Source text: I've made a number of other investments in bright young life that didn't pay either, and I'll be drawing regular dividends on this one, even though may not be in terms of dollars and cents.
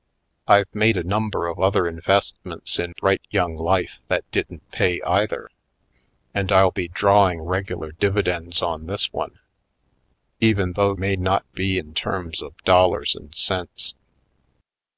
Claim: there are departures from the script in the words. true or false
false